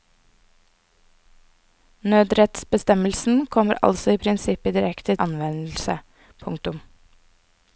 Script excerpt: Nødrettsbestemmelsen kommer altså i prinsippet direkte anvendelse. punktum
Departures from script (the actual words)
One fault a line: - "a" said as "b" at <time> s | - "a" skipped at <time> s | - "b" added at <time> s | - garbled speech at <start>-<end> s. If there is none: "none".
none